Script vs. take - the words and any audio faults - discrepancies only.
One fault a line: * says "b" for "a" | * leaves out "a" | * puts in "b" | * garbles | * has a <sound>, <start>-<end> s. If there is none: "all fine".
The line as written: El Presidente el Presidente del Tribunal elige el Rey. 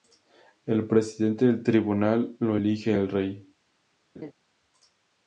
* leaves out "el Presidente"
* puts in "lo"
* has a laugh, 4.1-4.3 s